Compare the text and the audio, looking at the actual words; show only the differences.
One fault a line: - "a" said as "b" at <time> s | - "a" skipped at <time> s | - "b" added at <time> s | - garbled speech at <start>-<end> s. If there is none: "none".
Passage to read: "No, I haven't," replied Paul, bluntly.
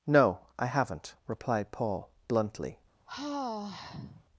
none